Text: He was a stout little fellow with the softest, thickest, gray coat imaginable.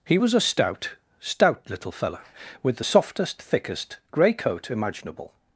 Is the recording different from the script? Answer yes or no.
yes